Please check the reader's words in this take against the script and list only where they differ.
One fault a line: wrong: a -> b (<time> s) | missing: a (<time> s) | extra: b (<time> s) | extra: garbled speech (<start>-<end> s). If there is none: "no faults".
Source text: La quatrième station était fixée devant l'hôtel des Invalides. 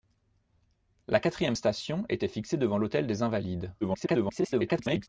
extra: garbled speech (3.8-5.1 s)